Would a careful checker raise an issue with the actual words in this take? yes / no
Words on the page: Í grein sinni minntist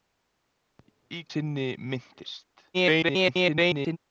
yes